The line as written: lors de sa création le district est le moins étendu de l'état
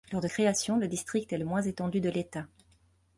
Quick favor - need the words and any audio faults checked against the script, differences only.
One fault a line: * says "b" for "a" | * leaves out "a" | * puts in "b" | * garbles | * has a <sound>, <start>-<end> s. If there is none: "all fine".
* leaves out "sa"